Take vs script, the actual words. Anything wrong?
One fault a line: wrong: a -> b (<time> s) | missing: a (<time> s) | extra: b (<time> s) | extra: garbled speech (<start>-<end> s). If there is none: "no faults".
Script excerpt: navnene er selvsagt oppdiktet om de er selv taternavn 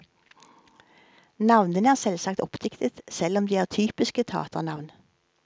extra: selv (3.1 s)
wrong: selv -> typiske (3.7 s)